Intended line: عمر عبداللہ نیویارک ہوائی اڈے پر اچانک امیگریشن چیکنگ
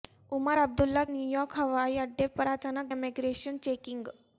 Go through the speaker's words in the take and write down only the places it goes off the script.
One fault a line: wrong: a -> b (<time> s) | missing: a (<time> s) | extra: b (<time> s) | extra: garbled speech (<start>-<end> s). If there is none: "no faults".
no faults